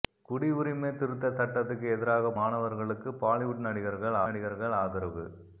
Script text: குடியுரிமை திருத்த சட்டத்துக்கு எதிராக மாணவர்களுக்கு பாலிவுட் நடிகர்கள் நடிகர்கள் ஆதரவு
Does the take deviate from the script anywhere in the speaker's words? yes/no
no